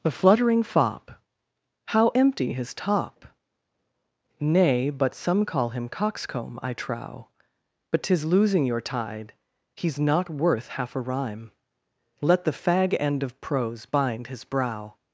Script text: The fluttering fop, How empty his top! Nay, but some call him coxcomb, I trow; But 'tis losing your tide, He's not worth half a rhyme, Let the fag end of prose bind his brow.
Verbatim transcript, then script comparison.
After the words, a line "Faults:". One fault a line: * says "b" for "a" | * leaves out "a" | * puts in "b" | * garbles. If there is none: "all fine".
The fluttering fop, How empty his top! Nay, but some call him coxcomb, I trow; But 'tis losing your tide, He's not worth half a rhyme, Let the fag end of prose bind his brow.
Faults:
all fine